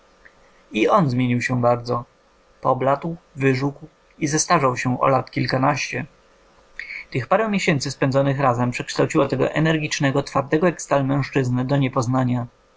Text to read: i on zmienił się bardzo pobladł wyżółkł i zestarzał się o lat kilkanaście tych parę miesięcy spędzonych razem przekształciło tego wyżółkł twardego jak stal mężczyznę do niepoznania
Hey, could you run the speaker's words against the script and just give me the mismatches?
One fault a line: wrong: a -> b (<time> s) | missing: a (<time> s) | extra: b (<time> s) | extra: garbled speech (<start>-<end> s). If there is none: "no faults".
wrong: wyżółkł -> energicznego (9.5 s)